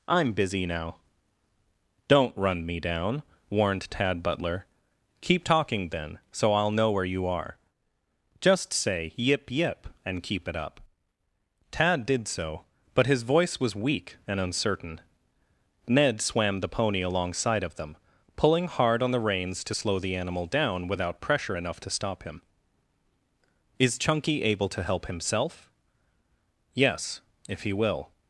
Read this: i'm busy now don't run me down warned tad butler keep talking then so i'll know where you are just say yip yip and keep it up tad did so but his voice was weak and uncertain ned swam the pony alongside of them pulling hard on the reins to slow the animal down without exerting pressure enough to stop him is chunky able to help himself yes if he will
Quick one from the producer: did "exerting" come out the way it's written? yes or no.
no